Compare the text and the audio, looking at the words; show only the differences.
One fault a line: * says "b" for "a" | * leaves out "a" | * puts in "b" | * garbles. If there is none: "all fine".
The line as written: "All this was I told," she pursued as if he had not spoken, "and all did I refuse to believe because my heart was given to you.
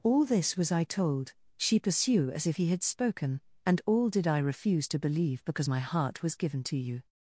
* says "pursue" for "pursued"
* leaves out "not"